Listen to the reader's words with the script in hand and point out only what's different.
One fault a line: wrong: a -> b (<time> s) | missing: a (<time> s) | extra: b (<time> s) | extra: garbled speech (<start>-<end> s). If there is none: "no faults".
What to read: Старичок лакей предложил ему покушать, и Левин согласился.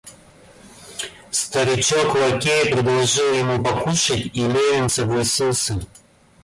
no faults